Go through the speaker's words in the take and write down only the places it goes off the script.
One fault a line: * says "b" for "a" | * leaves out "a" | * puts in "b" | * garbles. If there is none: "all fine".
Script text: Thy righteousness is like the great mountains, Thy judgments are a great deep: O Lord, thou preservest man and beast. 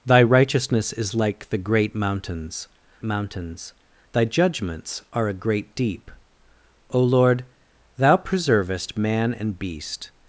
* puts in "mountains"